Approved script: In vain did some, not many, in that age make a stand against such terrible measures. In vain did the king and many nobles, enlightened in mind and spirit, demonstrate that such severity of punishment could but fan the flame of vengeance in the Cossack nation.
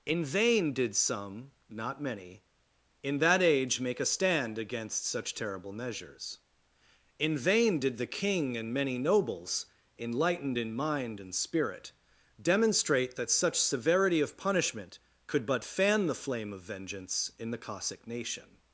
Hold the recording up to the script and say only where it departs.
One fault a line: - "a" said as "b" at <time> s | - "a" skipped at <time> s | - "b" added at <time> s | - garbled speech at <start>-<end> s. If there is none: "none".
none